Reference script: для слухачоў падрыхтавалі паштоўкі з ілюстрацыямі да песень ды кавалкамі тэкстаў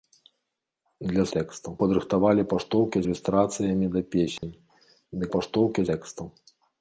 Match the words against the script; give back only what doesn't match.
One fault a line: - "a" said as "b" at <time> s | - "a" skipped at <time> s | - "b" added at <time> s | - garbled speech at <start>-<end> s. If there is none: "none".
- "слухачоў" said as "тэкстаў" at 1.4 s
- "з" skipped at 3.0 s
- "кавалкамі" said as "паштоўкі" at 5.4 s